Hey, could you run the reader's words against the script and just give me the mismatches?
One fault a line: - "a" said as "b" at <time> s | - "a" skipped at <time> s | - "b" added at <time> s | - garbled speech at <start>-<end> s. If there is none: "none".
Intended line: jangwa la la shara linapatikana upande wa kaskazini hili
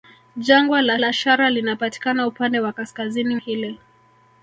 none